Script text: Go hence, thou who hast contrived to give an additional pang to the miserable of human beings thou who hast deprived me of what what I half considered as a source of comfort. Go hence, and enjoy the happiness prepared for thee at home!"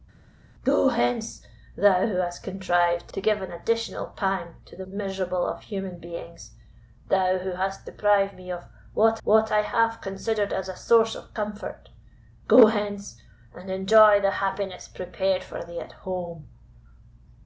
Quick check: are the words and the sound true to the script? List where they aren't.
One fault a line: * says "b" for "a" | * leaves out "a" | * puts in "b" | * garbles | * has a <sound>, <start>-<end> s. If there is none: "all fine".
all fine